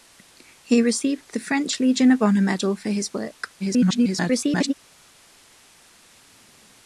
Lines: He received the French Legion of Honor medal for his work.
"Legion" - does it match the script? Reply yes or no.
yes